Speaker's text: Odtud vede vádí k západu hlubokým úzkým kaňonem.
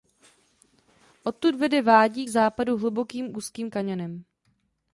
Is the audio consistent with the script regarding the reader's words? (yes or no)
yes